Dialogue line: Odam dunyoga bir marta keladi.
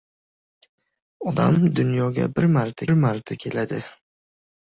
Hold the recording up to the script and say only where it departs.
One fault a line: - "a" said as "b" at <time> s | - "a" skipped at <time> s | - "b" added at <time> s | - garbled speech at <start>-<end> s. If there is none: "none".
- "marta" added at 2.9 s